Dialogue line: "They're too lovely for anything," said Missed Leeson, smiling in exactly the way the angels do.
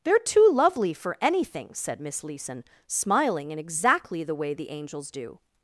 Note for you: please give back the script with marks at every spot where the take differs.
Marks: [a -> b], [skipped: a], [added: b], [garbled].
"They're too lovely for anything," said [Missed -> Miss] Leeson, smiling in exactly the way the angels do.